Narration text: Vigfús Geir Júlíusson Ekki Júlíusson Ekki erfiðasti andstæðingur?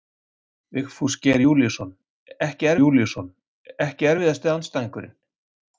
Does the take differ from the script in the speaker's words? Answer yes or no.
no